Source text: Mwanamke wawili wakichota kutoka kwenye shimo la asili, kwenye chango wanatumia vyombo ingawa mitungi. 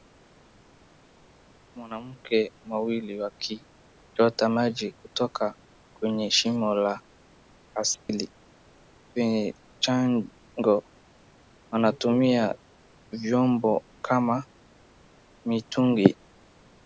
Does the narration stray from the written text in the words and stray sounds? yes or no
yes